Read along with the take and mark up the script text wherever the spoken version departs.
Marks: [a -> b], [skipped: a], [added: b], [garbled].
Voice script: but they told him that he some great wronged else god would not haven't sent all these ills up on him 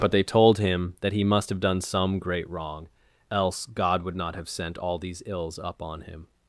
but they told him that he [added: must have done] some great [wronged -> wrong] else god would not [haven't -> have] sent all these ills up on him